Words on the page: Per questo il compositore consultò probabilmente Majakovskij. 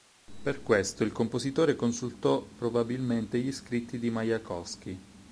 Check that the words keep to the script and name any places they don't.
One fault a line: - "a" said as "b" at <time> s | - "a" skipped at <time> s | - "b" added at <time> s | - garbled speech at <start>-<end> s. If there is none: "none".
- "gli scritti di" added at 3.4 s